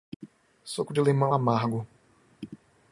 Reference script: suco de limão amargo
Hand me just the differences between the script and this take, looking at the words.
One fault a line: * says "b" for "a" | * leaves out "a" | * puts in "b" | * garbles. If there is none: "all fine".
all fine